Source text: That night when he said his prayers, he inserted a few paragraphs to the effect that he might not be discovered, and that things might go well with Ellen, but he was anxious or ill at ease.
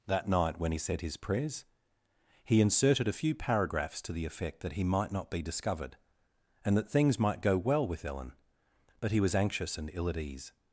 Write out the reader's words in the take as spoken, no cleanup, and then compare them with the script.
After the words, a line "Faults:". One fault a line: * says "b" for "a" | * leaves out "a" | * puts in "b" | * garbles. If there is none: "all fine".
That night when he said his prayers, he inserted a few paragraphs to the effect that he might not be discovered, and that things might go well with Ellen, but he was anxious and ill at ease.
Faults:
* says "and" for "or"